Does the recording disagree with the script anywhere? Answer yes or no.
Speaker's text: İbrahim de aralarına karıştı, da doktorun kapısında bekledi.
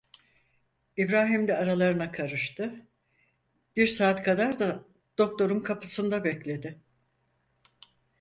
yes